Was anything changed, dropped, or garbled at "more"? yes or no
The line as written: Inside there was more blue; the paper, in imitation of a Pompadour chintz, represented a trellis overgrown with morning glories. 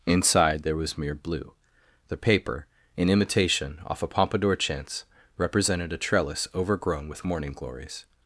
yes